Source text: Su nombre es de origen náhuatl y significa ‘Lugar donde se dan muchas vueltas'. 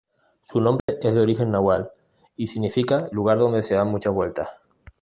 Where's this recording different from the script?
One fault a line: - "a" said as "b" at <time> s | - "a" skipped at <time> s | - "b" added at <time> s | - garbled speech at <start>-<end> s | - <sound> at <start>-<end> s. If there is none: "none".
- dropout at 0.8-0.9 s